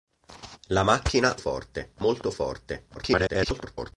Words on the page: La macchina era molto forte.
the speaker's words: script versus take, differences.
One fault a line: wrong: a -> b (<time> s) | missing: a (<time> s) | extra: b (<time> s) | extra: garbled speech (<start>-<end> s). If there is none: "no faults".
wrong: era -> forte (1.4 s)
extra: garbled speech (2.9-3.9 s)